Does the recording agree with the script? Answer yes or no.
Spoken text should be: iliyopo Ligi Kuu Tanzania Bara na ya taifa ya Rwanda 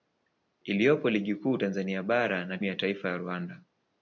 yes